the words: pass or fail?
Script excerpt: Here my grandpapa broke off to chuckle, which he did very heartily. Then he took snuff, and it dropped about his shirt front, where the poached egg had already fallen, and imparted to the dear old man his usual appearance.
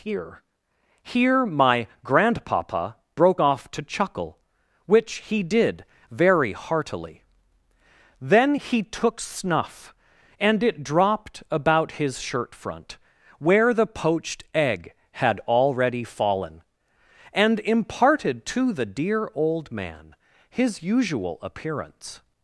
fail